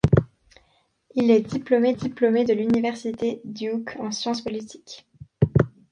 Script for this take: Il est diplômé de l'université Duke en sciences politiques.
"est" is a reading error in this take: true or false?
false